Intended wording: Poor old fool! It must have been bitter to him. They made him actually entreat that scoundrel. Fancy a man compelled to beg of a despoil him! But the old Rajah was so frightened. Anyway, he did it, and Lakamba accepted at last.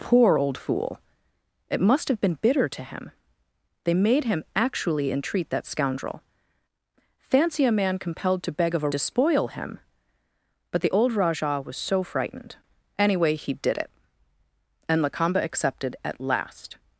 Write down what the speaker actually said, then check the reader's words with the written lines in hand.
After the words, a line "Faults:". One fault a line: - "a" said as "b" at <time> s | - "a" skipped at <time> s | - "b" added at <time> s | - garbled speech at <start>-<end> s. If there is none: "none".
Poor old fool! It must have been bitter to him. They made him actually entreat that scoundrel. Fancy a man compelled to beg of a despoil him! But the old Rajah was so frightened. Anyway, he did it, and Lakamba accepted at last.
Faults:
none